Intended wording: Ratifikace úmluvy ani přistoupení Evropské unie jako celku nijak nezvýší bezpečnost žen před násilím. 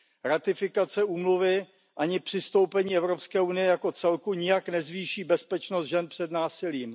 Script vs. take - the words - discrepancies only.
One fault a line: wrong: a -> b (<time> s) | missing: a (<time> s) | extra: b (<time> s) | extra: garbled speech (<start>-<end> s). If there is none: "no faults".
no faults